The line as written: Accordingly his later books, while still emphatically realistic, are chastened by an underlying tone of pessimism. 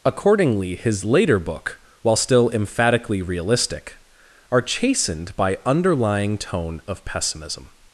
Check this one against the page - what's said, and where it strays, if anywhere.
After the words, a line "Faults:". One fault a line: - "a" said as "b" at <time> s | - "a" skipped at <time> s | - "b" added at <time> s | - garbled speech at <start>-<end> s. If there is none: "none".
Accordingly his later book, while still emphatically realistic, are chastened by underlying tone of pessimism.
Faults:
- "books" said as "book" at 1.4 s
- "an" skipped at 5.6 s